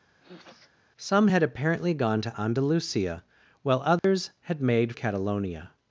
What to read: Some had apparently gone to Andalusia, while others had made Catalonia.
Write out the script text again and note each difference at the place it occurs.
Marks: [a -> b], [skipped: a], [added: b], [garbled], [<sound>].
[sniff] Some had apparently gone to Andalusia, while others [dropout] had made Catalonia.